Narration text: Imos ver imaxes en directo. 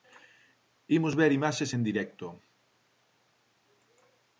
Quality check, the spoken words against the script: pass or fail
pass